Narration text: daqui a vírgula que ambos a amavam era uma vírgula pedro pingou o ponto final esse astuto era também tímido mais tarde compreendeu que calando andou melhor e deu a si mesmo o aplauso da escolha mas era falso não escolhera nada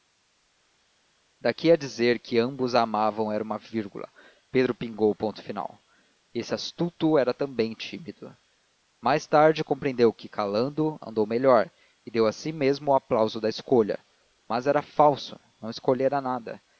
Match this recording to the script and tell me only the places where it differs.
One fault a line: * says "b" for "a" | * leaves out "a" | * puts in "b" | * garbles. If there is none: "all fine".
* says "dizer" for "vírgula"